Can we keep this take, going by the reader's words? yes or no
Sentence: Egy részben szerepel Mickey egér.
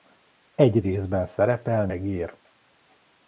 no